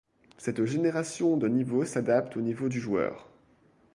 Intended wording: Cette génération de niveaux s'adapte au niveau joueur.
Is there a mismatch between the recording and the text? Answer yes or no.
yes